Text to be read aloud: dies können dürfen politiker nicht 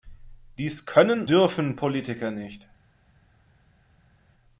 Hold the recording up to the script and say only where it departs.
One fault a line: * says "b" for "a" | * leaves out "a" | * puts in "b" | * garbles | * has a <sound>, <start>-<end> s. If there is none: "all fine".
all fine